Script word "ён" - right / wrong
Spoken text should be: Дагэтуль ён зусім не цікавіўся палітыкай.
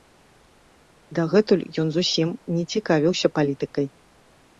right